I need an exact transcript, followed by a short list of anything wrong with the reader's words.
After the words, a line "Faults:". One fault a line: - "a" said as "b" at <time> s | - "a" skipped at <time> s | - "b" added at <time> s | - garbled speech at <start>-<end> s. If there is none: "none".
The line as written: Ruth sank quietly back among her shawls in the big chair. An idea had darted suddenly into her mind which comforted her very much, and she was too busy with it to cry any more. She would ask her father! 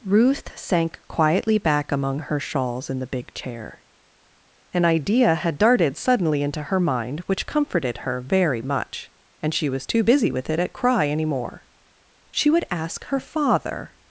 Ruth sank quietly back among her shawls in the big chair. An idea had darted suddenly into her mind which comforted her very much, and she was too busy with it at cry any more. She would ask her father!
Faults:
- "to" said as "at" at 10.6 s